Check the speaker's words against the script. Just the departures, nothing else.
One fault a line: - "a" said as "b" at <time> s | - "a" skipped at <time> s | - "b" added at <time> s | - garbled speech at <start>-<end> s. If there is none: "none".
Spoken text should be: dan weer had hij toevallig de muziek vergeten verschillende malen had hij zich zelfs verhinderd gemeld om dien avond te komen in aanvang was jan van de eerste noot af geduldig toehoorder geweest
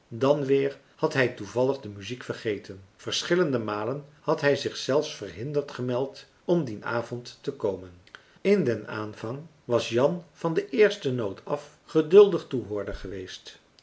- "den" added at 8.6 s